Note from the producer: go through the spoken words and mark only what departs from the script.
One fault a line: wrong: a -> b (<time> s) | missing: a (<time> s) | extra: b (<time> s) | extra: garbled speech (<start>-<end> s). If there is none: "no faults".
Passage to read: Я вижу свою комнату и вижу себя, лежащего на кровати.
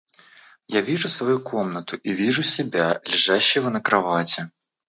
no faults